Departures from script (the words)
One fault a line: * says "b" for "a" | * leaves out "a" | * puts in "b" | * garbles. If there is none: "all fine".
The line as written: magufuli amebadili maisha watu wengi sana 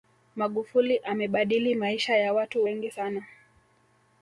* puts in "ya"